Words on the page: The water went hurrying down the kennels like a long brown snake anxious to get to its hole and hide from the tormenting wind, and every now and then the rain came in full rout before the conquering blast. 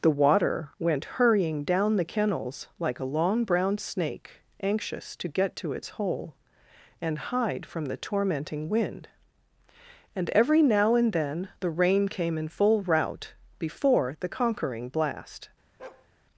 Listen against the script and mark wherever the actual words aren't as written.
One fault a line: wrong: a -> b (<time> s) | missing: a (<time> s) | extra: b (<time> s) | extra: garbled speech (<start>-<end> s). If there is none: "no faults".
no faults